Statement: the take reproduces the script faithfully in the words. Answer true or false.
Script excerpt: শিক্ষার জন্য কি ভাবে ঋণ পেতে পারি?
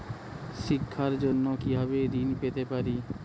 true